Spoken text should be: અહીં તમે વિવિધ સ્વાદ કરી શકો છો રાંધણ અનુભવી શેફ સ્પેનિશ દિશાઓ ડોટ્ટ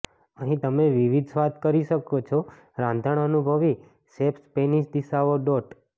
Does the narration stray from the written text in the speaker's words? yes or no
no